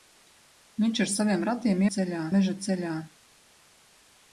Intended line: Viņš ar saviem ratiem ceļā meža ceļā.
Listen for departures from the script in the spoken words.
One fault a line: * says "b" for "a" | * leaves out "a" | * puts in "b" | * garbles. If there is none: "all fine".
all fine